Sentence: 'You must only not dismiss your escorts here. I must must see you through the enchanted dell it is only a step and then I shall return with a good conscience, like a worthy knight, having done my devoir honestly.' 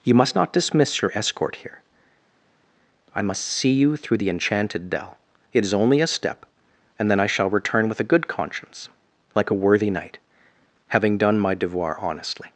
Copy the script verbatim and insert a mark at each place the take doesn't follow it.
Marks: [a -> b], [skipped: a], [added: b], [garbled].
'You must [skipped: only] not dismiss your [escorts -> escort] here. I must [skipped: must] see you through the enchanted dell it is only a step and then I shall return with a good conscience, like a worthy knight, having done my devoir honestly.'